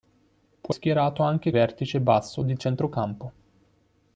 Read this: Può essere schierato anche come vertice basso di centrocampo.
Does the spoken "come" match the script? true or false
false